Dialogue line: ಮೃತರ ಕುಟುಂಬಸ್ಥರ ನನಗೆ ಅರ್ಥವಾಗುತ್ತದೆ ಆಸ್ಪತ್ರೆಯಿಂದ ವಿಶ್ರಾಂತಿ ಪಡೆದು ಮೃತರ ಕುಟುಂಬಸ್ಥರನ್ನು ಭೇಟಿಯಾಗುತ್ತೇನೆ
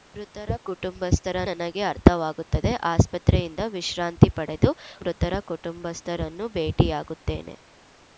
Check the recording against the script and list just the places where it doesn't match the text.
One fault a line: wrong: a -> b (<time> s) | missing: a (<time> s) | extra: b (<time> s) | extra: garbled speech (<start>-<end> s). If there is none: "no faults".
no faults